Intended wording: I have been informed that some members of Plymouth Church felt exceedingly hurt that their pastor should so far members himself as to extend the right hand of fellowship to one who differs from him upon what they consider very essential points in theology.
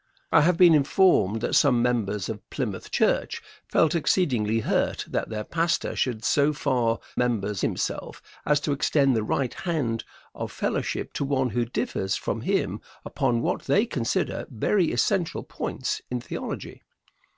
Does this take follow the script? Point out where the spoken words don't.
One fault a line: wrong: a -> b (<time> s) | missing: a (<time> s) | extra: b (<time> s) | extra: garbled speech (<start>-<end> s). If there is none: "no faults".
no faults